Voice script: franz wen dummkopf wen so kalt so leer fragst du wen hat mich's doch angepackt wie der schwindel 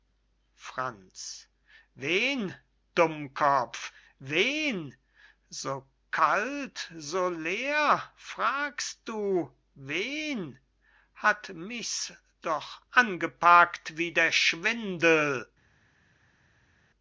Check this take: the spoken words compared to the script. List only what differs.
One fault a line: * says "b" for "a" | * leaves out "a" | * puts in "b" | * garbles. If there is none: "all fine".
all fine